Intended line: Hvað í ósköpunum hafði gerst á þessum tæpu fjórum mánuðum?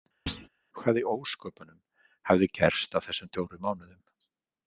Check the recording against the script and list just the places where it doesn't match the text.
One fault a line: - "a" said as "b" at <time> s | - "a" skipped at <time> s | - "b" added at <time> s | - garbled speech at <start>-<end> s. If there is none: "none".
- "tæpu" skipped at 3.3 s